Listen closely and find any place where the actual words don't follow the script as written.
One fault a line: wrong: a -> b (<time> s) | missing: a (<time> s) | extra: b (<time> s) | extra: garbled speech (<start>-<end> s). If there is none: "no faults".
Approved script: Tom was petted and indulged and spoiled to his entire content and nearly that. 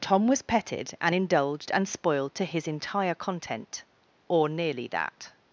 wrong: and -> or (4.3 s)